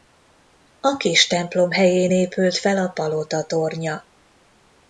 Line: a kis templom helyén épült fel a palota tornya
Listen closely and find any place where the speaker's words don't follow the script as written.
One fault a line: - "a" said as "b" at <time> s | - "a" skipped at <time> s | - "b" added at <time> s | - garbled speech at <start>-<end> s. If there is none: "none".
none